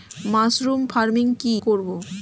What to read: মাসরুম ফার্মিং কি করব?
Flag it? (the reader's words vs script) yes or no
no